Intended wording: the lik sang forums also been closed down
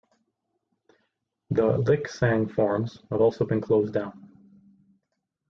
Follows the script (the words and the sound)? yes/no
no